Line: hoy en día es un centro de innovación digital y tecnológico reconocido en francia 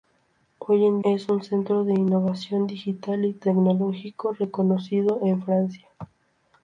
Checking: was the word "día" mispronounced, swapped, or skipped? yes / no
yes